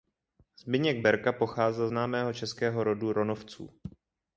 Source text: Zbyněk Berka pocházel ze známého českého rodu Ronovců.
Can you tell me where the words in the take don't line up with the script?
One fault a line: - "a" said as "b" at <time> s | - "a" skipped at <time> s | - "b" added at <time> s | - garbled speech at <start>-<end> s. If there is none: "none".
- "ze" skipped at 1.9 s